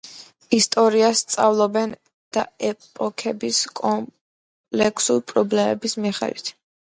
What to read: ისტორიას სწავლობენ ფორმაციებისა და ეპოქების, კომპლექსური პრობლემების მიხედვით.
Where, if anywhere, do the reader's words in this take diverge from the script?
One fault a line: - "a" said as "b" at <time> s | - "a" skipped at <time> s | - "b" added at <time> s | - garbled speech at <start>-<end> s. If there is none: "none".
- "ფორმაციებისა" skipped at 1.9 s